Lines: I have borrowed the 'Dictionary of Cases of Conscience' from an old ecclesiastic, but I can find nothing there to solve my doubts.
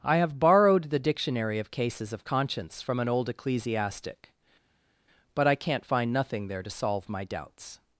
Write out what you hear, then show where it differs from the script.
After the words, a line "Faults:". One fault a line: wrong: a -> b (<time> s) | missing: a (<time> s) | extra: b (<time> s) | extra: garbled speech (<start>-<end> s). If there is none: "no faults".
I have borrowed the 'Dictionary of Cases of Conscience' from an old ecclesiastic, but I can't find nothing there to solve my doubts.
Faults:
wrong: can -> can't (5.6 s)